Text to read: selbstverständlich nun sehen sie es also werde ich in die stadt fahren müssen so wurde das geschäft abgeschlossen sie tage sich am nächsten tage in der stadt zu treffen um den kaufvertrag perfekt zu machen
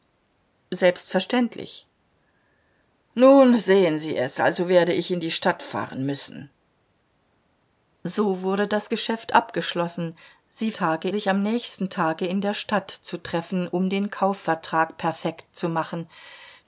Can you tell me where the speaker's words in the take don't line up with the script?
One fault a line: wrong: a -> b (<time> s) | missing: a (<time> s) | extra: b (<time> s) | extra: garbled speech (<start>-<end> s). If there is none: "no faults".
no faults